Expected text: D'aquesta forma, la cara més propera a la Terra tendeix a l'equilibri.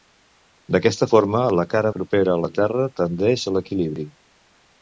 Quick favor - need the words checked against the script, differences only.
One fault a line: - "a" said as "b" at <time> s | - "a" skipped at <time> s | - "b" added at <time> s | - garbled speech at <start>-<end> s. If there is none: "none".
- "més" skipped at 1.9 s